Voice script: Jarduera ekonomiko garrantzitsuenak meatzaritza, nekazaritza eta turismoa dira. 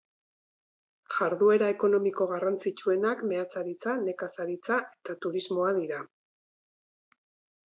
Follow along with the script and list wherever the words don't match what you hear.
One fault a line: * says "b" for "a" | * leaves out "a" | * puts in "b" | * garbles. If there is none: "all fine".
all fine